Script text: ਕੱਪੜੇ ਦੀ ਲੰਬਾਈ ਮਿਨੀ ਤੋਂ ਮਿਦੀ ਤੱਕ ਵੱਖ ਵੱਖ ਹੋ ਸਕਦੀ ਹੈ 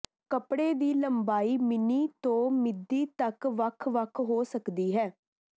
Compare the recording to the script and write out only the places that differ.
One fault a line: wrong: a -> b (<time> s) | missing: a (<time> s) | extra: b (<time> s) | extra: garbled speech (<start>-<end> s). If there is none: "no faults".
no faults